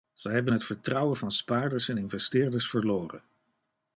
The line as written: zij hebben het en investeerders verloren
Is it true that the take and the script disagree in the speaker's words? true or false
true